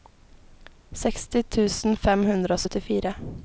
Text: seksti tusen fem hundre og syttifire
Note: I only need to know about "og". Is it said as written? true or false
true